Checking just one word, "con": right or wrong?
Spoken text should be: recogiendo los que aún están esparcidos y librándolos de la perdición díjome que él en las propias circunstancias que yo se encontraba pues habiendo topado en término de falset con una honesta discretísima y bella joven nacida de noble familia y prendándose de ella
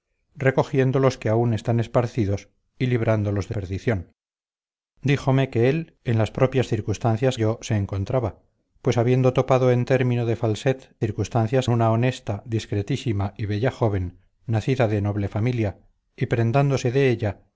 wrong